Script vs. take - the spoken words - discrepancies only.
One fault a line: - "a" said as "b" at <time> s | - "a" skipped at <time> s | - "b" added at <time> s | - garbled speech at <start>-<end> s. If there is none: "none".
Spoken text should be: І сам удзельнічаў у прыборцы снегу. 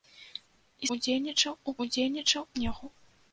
- "сам" skipped at 0.9 s
- "прыборцы" said as "удзельнічаў" at 1.9 s